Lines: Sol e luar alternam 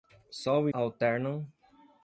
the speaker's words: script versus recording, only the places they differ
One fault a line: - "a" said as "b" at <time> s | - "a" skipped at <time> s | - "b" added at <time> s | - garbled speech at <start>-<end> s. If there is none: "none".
- "luar" skipped at 0.7 s